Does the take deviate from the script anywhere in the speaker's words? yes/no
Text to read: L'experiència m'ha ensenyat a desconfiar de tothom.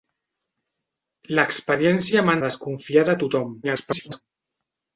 yes